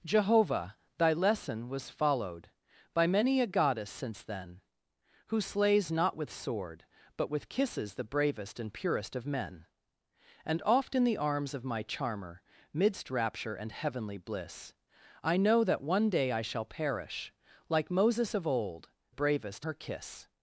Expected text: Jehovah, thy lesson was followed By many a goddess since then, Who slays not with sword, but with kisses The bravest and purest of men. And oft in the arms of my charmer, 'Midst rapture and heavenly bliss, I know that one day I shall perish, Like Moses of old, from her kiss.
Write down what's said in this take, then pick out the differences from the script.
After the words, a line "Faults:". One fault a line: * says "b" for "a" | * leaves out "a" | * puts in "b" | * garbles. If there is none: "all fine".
Jehovah, thy lesson was followed By many a goddess since then, Who slays not with sword, but with kisses The bravest and purest of men. And oft in the arms of my charmer, 'Midst rapture and heavenly bliss, I know that one day I shall perish, Like Moses of old, bravest her kiss.
Faults:
* says "bravest" for "from"